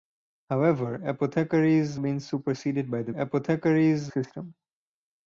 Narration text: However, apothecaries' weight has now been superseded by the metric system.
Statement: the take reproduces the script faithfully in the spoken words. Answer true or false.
false